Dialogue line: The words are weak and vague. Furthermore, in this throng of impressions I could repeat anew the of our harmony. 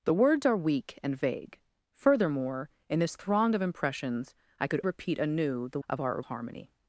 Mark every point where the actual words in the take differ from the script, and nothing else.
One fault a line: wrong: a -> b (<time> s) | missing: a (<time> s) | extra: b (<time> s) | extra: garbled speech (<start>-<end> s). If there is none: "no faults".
no faults